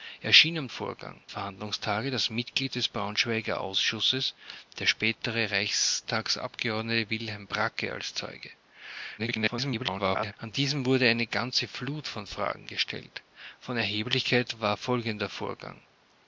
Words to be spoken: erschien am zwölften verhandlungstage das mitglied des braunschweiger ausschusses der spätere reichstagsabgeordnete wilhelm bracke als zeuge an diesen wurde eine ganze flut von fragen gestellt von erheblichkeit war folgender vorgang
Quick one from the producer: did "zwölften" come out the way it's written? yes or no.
no